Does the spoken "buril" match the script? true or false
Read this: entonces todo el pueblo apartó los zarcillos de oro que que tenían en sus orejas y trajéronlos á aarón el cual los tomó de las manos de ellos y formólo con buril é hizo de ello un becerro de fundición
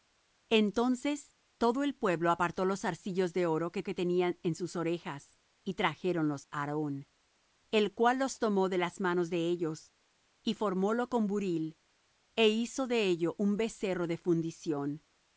true